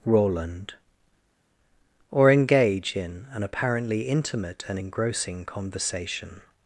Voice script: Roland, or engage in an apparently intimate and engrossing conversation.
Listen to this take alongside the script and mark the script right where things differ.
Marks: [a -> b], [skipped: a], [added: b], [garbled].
Roland, or engage in an apparently intimate and engrossing conversation.